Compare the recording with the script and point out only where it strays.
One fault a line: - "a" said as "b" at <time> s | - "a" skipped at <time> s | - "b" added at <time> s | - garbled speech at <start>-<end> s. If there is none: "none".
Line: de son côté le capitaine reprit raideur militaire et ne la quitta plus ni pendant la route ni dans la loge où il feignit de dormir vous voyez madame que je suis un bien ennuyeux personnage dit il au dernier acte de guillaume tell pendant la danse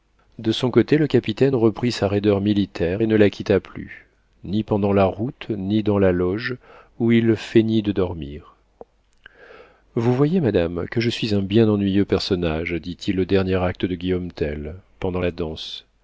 - "sa" added at 1.9 s